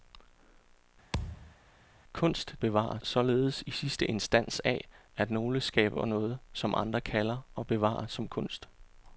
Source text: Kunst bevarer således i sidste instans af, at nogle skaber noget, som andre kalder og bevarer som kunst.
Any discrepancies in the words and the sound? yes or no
yes